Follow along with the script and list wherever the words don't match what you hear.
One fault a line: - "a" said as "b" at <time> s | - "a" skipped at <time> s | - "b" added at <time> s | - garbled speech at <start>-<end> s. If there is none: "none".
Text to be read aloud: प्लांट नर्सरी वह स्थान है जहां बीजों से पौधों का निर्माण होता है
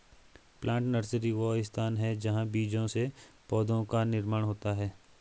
none